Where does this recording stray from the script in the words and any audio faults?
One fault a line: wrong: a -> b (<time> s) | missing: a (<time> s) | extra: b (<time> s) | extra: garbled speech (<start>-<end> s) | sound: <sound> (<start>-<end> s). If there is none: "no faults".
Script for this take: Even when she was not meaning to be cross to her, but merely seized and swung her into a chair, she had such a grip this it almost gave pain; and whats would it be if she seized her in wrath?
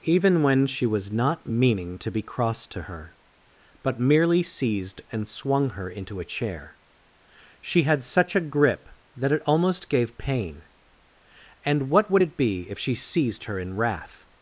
wrong: this -> that (9.2 s)
wrong: whats -> what (11.9 s)